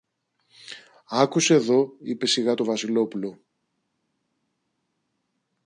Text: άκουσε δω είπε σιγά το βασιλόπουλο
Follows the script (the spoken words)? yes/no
yes